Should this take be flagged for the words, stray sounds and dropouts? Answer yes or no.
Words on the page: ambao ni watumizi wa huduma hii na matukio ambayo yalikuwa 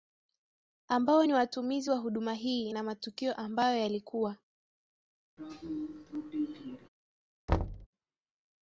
yes